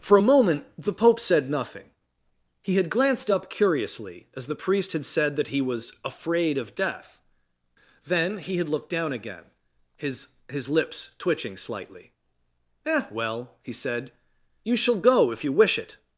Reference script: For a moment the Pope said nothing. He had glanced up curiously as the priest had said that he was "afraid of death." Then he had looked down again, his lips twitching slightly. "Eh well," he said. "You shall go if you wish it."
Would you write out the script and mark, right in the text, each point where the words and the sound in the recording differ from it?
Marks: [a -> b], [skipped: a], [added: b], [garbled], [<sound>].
For a moment the Pope said nothing. He had glanced up curiously as the priest had said that he was "afraid of death." Then he had looked down again, his [added: his] lips twitching slightly. "Eh well," he said. "You shall go if you wish it."